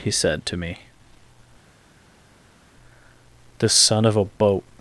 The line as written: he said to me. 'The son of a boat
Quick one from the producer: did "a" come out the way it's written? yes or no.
yes